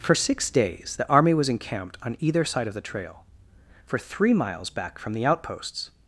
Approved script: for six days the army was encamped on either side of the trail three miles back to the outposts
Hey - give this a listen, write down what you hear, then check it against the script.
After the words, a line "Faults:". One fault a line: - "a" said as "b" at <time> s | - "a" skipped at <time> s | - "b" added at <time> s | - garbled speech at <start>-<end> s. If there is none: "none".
for six days the army was encamped on either side of the trail for three miles back from the outposts
Faults:
- "for" added at 3.9 s
- "to" said as "from" at 5.0 s